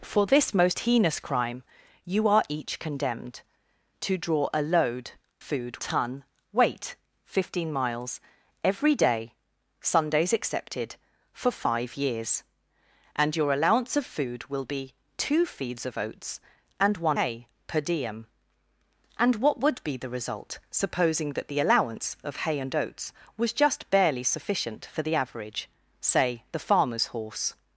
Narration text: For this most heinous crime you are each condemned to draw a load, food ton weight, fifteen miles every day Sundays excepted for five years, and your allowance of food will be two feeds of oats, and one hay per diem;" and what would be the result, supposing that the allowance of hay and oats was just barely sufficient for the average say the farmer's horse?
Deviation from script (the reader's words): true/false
false